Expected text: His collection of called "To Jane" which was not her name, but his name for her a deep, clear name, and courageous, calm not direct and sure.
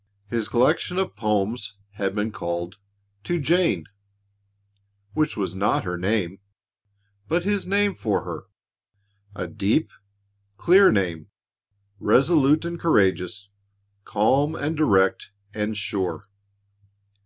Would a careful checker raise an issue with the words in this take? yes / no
yes